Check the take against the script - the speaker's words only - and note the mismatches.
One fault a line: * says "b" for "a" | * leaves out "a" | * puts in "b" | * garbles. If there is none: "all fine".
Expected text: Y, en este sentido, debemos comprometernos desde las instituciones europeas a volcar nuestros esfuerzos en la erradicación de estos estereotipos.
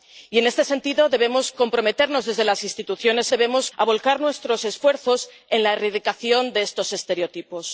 * says "debemos" for "europeas"